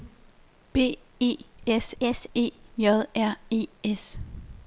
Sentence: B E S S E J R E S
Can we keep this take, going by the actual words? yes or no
yes